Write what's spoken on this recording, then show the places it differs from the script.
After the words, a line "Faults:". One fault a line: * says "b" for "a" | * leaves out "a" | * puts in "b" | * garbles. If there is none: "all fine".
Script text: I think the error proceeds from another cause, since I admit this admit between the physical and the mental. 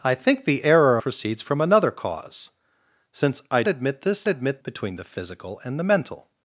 I think the error proceeds from another cause, since I admit this admit between the physical and the mental.
Faults:
all fine